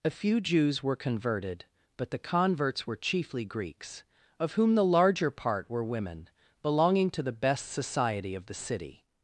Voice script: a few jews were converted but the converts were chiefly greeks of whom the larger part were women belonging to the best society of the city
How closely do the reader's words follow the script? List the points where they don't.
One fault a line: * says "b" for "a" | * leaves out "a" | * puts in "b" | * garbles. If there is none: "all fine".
all fine